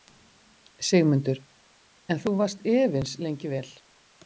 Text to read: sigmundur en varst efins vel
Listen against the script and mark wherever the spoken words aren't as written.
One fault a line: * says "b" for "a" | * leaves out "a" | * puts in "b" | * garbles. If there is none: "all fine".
* puts in "þú"
* puts in "lengi"